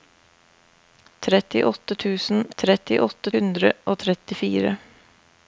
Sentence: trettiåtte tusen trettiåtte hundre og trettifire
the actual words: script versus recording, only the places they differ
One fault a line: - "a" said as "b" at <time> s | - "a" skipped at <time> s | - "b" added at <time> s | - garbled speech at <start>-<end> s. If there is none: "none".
none